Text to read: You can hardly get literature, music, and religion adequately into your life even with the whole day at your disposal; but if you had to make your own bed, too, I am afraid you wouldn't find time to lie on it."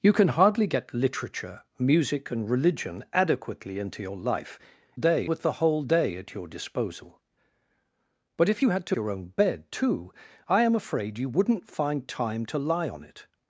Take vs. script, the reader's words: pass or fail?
fail